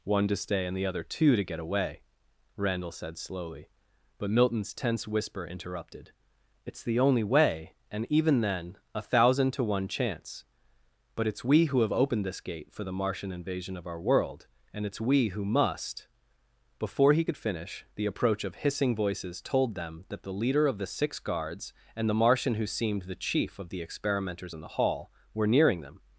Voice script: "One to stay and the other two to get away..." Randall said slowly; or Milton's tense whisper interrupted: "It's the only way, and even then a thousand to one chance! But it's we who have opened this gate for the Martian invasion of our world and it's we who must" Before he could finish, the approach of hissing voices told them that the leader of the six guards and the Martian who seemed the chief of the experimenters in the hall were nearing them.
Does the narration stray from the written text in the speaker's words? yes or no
yes